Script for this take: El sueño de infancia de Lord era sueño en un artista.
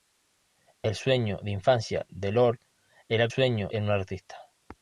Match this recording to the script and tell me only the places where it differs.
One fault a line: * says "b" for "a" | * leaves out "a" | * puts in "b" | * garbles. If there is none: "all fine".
all fine